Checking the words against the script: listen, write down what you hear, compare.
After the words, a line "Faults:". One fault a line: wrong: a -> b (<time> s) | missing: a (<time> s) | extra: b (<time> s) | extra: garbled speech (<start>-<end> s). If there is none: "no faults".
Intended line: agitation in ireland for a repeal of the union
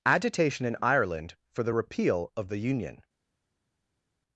agitation in ireland for the repeal of the union
Faults:
wrong: a -> the (1.6 s)